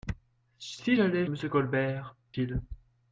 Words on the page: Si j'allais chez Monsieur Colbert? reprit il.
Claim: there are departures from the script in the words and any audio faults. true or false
true